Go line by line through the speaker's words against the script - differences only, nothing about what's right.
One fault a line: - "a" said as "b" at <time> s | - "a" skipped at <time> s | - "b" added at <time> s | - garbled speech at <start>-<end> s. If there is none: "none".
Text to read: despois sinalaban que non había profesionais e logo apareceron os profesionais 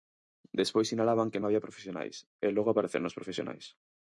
- "non" skipped at 1.4 s